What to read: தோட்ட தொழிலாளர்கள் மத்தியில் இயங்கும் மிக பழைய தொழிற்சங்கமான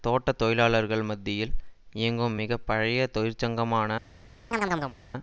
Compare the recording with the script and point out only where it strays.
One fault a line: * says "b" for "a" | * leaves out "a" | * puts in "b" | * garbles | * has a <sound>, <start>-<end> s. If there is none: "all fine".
* has a chirp, 4.5-5.0 s